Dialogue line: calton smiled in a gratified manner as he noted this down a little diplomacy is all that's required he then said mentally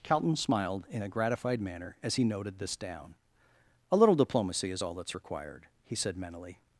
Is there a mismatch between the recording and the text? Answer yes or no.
yes